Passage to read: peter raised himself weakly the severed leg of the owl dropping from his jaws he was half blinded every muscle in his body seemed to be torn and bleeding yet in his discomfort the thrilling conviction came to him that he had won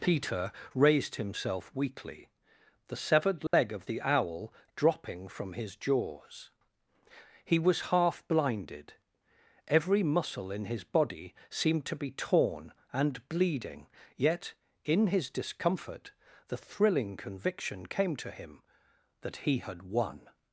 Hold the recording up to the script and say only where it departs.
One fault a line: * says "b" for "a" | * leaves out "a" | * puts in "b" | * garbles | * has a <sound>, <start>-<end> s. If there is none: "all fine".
* has a dropout, 3.5-3.5 s